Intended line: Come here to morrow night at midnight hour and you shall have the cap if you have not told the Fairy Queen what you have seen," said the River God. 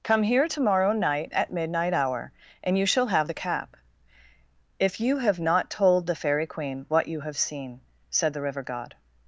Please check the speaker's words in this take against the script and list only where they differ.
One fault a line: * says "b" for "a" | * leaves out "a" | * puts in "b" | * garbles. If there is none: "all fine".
all fine